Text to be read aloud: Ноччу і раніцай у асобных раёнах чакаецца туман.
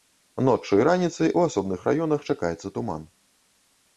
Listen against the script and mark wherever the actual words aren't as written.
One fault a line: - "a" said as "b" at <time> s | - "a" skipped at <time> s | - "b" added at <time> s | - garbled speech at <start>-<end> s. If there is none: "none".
none